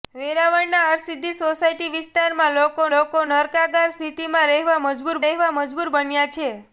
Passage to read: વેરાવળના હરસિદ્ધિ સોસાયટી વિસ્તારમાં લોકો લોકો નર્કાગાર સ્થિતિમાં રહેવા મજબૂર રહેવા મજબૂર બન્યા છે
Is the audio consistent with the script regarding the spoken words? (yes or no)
yes